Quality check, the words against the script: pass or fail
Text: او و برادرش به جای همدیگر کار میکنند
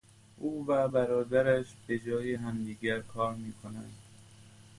pass